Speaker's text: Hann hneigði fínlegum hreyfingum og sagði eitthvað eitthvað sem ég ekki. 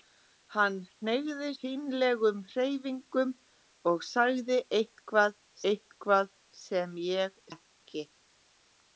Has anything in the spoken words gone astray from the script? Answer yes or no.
no